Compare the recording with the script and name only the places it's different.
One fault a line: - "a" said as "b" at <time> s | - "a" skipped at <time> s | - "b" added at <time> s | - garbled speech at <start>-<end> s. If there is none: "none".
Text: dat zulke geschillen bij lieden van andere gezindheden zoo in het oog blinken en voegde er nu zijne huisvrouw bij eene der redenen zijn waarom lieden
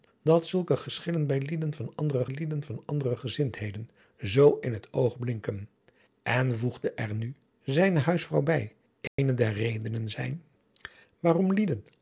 - "lieden van andere" added at 2.3 s